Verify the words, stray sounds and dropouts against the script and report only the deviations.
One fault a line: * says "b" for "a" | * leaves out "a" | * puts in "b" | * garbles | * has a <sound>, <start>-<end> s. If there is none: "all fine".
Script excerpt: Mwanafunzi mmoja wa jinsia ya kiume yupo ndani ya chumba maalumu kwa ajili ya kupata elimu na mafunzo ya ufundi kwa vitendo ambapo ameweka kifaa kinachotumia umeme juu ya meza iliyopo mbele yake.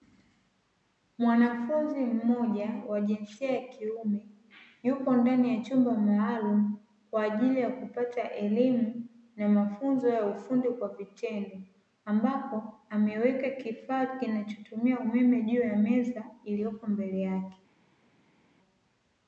all fine